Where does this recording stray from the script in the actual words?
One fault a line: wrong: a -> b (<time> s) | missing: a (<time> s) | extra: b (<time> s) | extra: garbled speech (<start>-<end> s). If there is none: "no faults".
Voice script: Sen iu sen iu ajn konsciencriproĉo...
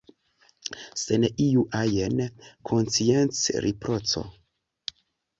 missing: sen iu (1.6 s)